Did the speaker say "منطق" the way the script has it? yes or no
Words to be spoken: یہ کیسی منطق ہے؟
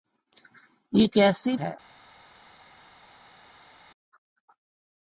no